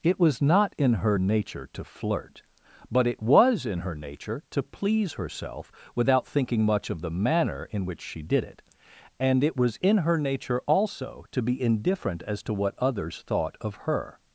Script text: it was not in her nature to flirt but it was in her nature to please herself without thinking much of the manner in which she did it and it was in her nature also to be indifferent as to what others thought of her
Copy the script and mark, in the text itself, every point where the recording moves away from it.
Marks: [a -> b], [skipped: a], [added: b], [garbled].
it was not in her nature to flirt but it was in her nature to please herself without thinking much of the manner in which she did it and it was in her nature also to be indifferent as to what others thought of her